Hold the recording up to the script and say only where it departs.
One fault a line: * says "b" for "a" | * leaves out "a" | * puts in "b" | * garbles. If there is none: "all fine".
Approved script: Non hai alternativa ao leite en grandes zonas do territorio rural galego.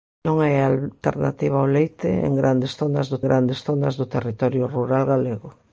* puts in "grandes zonas do"